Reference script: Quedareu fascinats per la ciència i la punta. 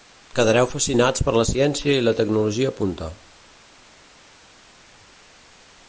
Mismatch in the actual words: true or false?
true